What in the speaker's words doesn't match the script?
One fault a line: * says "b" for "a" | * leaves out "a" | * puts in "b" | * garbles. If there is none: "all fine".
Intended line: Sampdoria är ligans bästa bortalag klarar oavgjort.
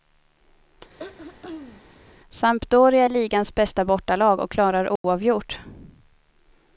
* puts in "och"